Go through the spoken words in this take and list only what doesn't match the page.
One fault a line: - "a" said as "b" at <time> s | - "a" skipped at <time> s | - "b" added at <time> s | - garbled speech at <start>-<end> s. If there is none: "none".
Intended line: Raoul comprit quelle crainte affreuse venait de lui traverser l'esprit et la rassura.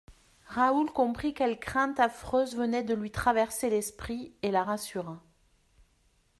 none